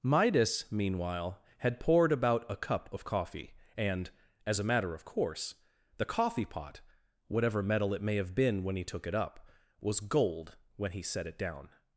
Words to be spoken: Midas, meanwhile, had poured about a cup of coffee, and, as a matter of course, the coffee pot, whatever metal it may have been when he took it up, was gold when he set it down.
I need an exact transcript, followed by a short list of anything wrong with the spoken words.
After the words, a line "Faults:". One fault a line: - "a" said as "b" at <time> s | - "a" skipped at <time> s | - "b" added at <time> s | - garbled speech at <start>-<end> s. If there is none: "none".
Midas, meanwhile, had poured about a cup of coffee, and, as a matter of course, the coffee pot, whatever metal it may have been when he took it up, was gold when he set it down.
Faults:
none